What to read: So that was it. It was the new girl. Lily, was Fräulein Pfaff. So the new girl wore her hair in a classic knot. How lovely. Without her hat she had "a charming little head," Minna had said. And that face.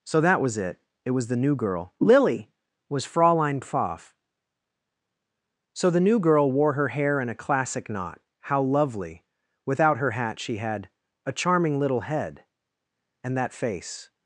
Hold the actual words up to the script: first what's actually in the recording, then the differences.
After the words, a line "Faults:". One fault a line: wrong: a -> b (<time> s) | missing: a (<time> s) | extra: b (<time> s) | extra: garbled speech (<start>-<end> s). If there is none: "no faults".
So that was it. It was the new girl. Lily, was Fräulein Pfaff. So the new girl wore her hair in a classic knot. How lovely. Without her hat she had "a charming little head," And that face.
Faults:
missing: Minna had said (12.4 s)